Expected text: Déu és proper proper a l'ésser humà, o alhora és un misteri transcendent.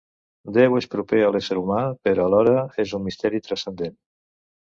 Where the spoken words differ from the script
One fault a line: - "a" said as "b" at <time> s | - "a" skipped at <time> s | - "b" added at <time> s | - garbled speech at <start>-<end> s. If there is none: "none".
- "proper" skipped at 1.2 s
- "o" said as "però" at 2.1 s